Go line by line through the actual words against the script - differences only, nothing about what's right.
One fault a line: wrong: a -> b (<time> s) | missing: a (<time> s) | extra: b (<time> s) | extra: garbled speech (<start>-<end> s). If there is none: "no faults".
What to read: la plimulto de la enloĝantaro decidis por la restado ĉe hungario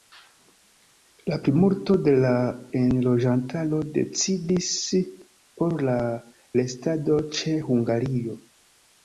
no faults